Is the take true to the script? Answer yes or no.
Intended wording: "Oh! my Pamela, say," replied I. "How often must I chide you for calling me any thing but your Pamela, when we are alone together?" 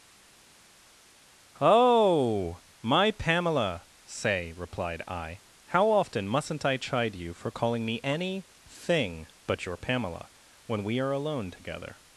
no